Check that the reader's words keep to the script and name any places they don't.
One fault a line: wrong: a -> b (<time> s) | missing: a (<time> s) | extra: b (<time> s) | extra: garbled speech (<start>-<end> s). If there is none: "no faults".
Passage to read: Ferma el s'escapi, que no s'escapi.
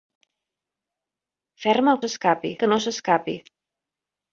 no faults